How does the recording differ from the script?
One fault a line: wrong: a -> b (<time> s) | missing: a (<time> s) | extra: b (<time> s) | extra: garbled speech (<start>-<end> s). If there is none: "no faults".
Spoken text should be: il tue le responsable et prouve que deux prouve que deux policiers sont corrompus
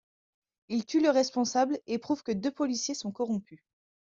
missing: prouve que deux (2.5 s)